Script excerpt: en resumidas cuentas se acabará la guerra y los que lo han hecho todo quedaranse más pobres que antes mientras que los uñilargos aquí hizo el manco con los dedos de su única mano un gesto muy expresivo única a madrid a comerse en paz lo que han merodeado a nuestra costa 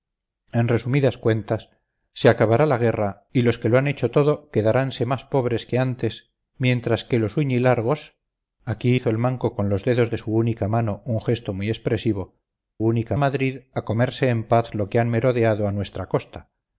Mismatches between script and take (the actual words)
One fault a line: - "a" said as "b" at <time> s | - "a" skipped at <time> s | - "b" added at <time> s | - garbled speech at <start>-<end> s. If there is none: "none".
none